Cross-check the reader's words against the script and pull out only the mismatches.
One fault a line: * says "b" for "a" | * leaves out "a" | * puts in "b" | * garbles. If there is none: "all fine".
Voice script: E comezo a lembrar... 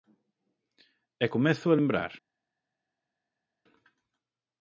all fine